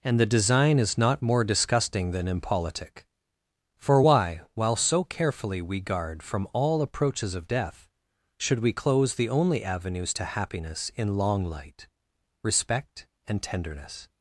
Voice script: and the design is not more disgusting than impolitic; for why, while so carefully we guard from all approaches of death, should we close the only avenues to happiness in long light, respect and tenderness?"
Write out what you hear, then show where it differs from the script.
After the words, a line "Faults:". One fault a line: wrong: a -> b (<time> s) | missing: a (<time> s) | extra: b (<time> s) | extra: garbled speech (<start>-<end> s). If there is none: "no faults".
and the design is not more disgusting than impolitic; for why, while so carefully we guard from all approaches of death, should we close the only avenues to happiness in long light, respect and tenderness?"
Faults:
no faults